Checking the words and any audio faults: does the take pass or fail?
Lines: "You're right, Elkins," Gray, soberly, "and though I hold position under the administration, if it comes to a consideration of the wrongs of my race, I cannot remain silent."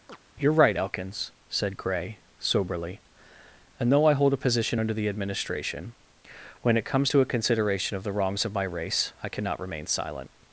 fail